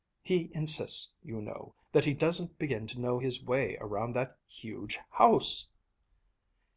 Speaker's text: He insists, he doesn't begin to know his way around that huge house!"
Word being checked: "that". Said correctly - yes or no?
yes